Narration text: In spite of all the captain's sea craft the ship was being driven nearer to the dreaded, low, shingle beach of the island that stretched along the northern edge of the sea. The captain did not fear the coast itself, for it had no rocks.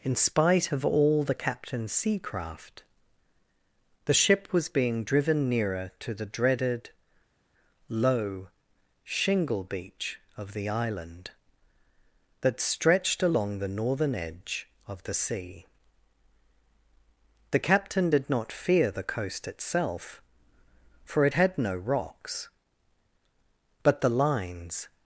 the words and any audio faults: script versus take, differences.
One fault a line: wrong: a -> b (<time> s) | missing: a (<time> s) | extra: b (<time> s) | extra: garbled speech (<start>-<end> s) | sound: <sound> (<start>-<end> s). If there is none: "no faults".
extra: But the lines (23.8 s)